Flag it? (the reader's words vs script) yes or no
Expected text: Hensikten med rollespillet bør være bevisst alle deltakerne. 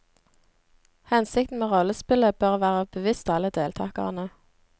no